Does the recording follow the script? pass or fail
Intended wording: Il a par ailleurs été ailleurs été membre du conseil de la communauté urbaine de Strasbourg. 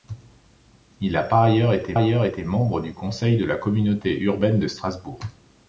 pass